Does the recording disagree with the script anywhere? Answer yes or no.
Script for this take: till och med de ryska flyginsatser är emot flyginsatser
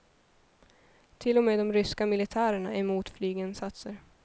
yes